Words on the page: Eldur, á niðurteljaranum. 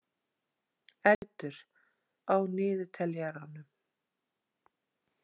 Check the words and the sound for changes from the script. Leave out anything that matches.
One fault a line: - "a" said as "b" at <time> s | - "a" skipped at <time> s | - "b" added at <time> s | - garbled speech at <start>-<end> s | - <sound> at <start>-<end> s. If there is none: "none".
- dropout at 1.1-1.2 s